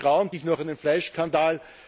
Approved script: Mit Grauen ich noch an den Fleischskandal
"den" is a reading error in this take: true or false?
false